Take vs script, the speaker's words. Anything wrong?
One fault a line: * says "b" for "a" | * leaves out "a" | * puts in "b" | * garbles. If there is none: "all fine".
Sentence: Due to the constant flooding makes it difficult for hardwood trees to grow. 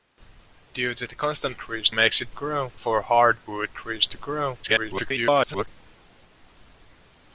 * says "trees" for "flooding"
* says "grow" for "difficult"
* garbles